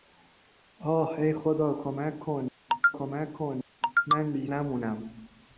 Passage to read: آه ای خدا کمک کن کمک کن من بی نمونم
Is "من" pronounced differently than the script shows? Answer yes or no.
no